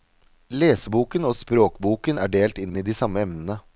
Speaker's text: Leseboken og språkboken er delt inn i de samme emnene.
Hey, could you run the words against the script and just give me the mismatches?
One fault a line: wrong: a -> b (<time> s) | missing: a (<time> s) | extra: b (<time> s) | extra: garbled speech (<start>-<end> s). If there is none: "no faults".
extra: inn (2.7 s)